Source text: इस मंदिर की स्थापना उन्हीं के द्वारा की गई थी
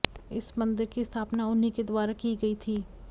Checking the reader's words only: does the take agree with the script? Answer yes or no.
yes